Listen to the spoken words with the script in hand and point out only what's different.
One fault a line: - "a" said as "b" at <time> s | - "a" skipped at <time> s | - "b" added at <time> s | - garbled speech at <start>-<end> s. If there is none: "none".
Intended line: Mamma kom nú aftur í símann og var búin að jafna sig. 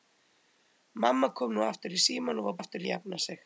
- "búin" said as "aftur" at 2.6 s